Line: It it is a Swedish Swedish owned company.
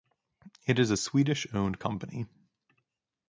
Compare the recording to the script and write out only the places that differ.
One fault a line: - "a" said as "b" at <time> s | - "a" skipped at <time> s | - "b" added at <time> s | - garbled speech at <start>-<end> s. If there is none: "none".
- "it" skipped at 0.8 s
- "Swedish" skipped at 1.5 s